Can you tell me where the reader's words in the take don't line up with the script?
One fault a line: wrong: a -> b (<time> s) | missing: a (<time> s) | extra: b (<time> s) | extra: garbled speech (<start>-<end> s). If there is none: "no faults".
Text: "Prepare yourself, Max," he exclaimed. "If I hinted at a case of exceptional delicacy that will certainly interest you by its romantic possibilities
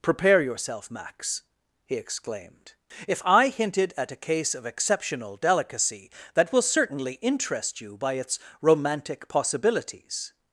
no faults